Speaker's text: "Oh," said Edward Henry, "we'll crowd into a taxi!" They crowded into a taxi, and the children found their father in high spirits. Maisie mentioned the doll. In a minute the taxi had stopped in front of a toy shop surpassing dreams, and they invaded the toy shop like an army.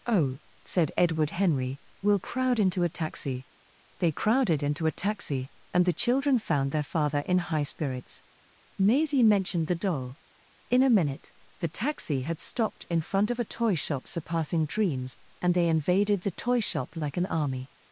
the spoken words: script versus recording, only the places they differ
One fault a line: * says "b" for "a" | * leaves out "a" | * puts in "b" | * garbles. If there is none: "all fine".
all fine